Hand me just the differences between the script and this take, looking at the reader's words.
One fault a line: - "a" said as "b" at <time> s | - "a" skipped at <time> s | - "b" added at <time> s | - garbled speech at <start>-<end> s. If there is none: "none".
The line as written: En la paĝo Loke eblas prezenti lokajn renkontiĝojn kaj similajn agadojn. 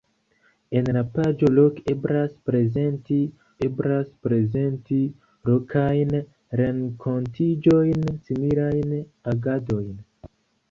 - "eblas prezenti" added at 3.7 s
- "kaj" skipped at 8.1 s